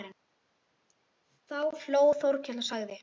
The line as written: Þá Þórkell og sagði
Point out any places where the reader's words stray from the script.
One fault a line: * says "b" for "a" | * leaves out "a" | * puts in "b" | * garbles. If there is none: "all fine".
* puts in "hló"